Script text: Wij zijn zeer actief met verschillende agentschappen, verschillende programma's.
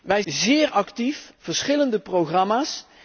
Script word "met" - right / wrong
wrong